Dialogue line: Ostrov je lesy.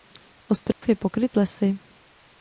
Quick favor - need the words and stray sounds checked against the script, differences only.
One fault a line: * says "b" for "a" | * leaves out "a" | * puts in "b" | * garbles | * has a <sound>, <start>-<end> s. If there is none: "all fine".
* has a dropout, 0.7-0.8 s
* puts in "pokryt"